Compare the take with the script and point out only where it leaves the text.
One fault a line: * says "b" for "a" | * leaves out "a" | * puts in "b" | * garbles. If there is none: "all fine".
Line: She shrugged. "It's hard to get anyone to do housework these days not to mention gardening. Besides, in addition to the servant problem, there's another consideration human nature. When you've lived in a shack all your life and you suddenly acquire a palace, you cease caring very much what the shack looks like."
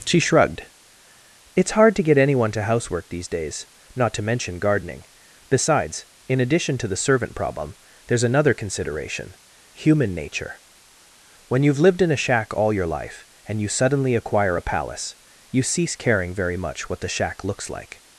* leaves out "do"